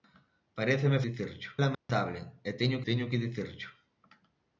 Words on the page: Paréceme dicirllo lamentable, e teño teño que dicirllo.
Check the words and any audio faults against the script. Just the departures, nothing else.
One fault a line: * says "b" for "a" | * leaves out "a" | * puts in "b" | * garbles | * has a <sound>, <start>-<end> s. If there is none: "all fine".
* has a dropout, 1.7-1.9 s